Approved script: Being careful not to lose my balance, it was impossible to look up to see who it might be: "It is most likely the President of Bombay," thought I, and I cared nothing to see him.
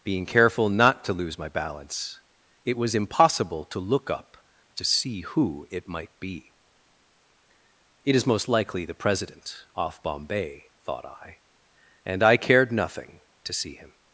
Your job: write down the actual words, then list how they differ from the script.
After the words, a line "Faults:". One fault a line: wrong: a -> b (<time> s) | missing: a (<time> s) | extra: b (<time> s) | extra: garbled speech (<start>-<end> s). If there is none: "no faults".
Being careful not to lose my balance, it was impossible to look up to see who it might be: "It is most likely the President off Bombay," thought I, and I cared nothing to see him.
Faults:
wrong: of -> off (9.8 s)